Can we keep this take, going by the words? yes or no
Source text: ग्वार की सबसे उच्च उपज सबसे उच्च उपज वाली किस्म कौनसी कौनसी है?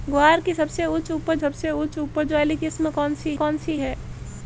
yes